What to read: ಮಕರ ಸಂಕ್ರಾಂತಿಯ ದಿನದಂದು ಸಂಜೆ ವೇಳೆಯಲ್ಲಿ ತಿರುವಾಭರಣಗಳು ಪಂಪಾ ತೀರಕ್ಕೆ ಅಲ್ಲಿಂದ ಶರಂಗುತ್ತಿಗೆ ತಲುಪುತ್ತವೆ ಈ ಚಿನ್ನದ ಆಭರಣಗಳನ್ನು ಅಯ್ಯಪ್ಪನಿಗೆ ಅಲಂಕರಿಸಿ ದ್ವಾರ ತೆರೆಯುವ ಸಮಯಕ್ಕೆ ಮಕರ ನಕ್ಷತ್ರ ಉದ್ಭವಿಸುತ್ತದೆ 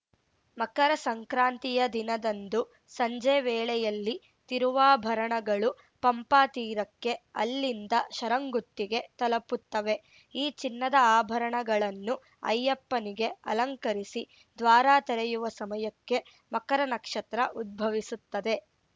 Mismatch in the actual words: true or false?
false